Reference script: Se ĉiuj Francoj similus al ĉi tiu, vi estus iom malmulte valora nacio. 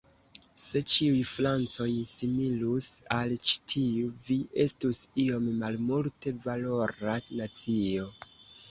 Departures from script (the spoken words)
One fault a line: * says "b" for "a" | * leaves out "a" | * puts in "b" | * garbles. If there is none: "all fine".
all fine